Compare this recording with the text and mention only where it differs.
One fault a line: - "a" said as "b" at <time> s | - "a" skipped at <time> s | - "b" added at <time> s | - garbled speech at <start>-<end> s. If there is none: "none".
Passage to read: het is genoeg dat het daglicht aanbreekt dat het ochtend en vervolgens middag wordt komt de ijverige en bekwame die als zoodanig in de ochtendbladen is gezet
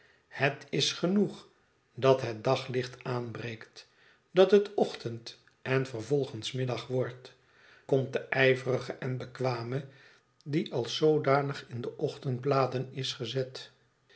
none